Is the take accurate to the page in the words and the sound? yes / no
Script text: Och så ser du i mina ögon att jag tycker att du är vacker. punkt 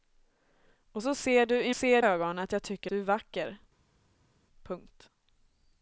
no